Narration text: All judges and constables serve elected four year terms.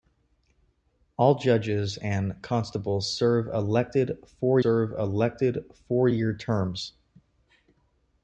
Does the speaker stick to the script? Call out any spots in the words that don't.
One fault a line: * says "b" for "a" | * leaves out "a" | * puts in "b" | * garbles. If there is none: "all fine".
* puts in "serve elected four"